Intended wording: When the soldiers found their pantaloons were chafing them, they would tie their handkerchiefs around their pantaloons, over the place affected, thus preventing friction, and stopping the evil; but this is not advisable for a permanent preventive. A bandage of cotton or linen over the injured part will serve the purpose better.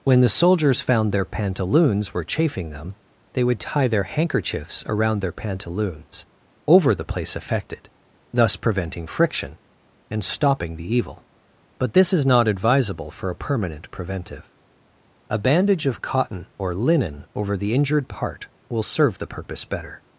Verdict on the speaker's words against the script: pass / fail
pass